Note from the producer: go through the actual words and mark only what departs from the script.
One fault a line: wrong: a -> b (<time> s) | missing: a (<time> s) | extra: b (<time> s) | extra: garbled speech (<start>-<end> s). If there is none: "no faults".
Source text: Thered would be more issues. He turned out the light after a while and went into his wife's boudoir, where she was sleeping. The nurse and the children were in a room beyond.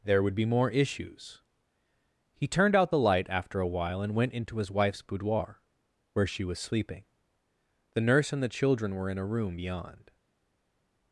wrong: Thered -> There (0.0 s)